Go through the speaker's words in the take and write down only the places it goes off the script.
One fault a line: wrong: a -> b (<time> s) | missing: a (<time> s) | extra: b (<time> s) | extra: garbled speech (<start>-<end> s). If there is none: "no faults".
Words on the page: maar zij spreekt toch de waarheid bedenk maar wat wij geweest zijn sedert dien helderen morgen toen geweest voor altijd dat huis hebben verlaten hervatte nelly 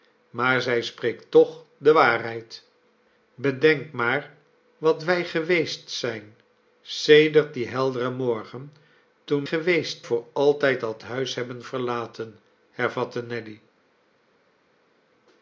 no faults